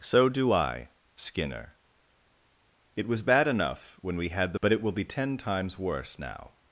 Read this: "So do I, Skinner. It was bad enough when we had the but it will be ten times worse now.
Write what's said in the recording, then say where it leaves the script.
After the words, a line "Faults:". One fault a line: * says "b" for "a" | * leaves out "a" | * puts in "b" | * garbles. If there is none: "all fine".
"So do I, Skinner. It was bad enough when we had the but it will be ten times worse now.
Faults:
all fine